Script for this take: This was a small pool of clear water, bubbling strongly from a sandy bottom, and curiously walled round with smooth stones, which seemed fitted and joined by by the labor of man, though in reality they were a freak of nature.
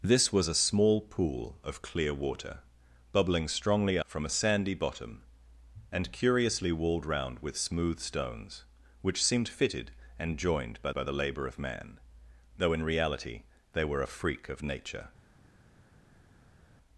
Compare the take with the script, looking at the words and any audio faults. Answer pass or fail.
pass